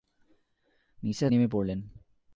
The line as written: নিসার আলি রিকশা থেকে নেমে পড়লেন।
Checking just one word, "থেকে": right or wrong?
wrong